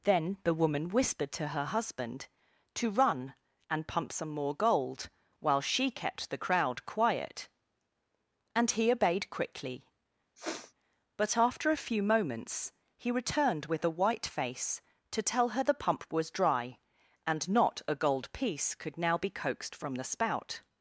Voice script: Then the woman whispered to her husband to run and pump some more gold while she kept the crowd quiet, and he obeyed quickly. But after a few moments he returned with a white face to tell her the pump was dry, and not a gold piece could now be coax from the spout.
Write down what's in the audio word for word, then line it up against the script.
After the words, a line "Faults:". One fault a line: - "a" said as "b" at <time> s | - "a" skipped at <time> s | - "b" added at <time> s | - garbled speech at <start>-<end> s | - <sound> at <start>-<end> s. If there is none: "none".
Then the woman whispered to her husband to run and pump some more gold while she kept the crowd quiet, and he obeyed quickly. But after a few moments he returned with a white face to tell her the pump was dry, and not a gold piece could now be coaxed from the spout.
Faults:
- sniff at 10.4-10.7 s
- "coax" said as "coaxed" at 19.3 s